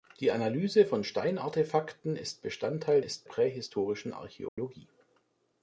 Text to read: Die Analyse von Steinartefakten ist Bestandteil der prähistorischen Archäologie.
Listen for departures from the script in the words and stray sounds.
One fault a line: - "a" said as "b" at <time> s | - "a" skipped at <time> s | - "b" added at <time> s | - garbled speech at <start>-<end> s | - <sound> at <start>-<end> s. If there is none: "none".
- "der" said as "ist" at 3.0 s
- dropout at 4.5-4.6 s